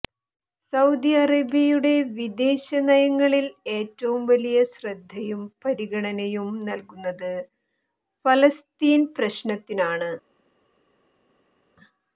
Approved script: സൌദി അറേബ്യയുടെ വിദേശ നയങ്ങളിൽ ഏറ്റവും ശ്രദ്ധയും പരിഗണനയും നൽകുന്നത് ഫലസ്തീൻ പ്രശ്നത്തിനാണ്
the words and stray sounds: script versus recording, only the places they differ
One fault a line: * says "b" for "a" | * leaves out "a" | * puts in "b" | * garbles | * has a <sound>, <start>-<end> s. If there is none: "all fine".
* puts in "വലിയ"